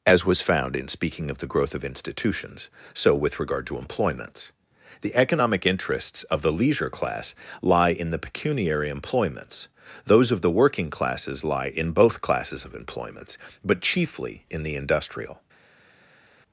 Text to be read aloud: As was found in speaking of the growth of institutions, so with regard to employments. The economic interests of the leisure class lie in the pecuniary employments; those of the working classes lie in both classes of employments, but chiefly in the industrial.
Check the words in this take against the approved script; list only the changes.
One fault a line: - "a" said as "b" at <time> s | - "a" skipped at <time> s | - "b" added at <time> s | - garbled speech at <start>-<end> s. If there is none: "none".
none